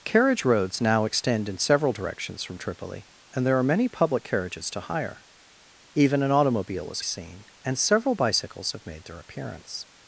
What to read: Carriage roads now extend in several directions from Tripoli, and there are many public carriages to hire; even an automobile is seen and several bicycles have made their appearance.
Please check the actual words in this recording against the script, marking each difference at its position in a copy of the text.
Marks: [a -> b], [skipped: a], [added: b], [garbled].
Carriage roads now extend in several directions from Tripoli, and there are many public carriages to hire; even an automobile is seen and several bicycles have made their appearance.